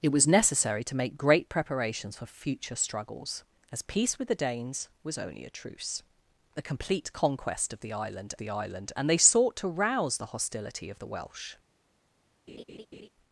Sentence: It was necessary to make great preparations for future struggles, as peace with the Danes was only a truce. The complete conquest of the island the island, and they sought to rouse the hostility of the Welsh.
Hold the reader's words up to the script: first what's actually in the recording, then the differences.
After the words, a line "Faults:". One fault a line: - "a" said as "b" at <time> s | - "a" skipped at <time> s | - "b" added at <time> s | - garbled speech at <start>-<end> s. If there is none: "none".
It was necessary to make great preparations for future struggles, as peace with the Danes was only a truce. The complete conquest of the island the island, and they sought to rouse the hostility of the Welsh.
Faults:
none